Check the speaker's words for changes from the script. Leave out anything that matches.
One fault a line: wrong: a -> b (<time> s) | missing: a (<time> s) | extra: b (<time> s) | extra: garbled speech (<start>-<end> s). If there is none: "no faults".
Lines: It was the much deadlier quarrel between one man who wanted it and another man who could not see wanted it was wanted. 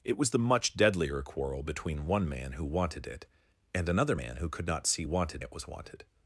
no faults